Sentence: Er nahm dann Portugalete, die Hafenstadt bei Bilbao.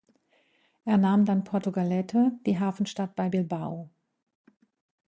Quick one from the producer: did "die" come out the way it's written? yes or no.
yes